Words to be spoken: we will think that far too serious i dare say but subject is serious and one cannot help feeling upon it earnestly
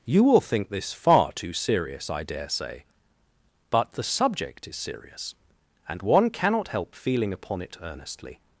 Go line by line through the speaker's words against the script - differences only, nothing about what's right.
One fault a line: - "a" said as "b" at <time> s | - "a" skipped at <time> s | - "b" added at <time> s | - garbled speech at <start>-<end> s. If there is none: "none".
- "we" said as "you" at 0.1 s
- "that" said as "this" at 0.7 s
- "the" added at 3.9 s